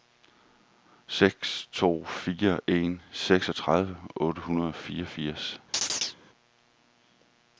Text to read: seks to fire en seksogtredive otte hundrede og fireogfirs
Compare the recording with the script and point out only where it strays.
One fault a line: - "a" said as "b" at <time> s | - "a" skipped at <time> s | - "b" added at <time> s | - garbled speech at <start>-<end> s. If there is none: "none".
none